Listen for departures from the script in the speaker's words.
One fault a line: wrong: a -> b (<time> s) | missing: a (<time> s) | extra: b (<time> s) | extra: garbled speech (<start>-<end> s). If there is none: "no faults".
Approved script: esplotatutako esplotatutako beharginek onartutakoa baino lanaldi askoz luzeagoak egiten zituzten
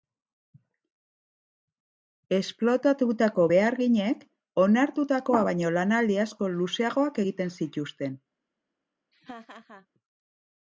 missing: esplotatutako (3.5 s)